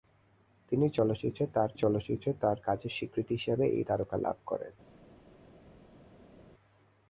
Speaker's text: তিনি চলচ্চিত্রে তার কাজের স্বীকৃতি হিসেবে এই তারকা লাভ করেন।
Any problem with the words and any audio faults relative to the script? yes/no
yes